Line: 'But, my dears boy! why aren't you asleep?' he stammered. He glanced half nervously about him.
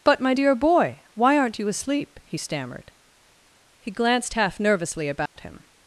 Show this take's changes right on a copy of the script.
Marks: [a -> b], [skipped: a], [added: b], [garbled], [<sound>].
'But, my [dears -> dear] boy! why aren't you asleep?' he stammered. He glanced half nervously about [dropout] him.